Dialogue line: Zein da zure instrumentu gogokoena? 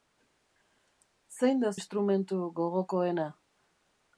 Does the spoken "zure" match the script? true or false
false